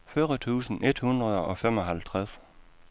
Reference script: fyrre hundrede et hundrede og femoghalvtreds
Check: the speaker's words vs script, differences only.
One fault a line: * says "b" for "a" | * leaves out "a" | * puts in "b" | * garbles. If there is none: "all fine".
* says "tusind" for "hundrede"